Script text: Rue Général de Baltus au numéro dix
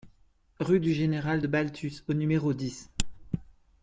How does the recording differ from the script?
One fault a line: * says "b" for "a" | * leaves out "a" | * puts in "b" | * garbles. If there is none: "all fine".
* puts in "du"